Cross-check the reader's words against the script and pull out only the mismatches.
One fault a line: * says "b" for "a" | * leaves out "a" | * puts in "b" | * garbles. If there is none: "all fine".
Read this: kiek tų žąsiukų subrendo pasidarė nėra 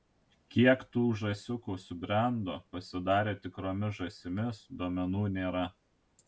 * puts in "tikromis žąsimis duomenų"